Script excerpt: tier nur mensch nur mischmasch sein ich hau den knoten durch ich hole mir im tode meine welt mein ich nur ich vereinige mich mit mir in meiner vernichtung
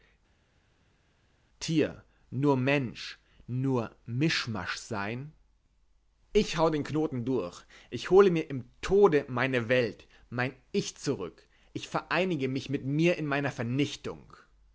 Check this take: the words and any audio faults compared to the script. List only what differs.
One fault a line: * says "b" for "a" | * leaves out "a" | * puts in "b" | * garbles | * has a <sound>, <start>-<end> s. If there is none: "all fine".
* says "zurück" for "nur"